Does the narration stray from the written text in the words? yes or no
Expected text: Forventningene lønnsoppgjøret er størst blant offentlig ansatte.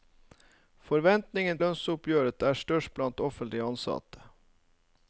no